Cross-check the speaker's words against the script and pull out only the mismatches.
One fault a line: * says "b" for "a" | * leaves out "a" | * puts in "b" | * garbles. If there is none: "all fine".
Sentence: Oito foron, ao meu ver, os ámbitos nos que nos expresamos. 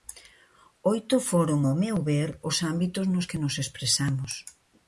all fine